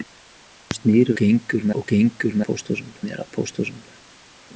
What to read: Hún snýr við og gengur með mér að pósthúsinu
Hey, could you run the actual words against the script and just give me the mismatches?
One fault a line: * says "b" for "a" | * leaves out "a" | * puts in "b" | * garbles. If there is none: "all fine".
* says "gengur" for "við"
* says "pósthúsinu" for "með"